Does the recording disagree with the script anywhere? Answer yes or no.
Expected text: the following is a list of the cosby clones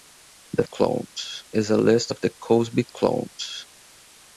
yes